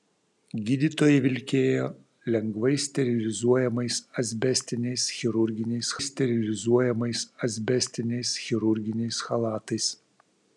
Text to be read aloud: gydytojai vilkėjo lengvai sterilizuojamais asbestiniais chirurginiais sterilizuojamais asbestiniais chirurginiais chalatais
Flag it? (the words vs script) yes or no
no